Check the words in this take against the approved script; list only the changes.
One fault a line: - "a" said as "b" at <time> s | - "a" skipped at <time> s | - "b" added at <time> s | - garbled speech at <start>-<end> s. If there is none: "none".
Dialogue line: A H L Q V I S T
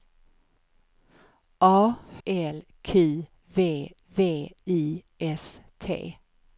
- "H" skipped at 2.0 s
- "V" added at 4.1 s